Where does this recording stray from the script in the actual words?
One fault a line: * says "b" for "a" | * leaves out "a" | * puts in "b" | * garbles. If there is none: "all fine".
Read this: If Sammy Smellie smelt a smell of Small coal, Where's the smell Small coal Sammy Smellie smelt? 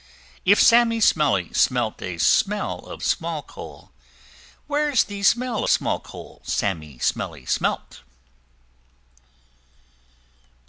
all fine